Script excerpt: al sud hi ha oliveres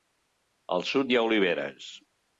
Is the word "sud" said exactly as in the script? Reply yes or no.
yes